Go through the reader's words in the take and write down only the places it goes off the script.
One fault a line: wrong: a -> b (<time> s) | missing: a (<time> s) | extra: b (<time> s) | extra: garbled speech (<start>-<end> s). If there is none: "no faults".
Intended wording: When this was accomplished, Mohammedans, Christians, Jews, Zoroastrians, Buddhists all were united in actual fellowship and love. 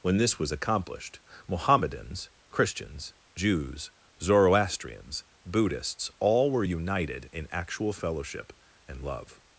no faults